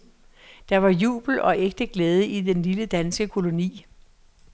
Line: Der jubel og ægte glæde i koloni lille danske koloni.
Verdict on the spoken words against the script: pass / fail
fail